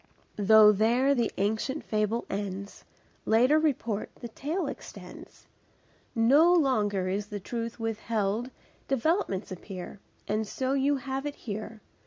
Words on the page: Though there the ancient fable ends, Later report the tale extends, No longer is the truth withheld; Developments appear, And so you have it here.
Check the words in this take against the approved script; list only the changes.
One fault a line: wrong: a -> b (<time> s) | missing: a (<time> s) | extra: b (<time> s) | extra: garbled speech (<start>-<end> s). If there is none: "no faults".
no faults